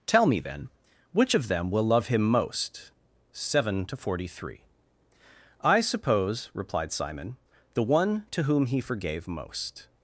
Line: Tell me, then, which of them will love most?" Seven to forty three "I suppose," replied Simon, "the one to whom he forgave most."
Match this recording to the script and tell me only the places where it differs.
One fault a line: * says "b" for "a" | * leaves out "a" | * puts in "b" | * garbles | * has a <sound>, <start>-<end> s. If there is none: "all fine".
* puts in "him"